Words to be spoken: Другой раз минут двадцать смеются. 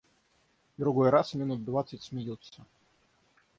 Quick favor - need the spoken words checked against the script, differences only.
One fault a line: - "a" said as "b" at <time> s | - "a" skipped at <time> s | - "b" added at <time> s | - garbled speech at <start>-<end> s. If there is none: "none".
none